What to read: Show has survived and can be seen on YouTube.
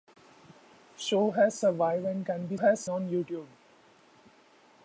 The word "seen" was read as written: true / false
false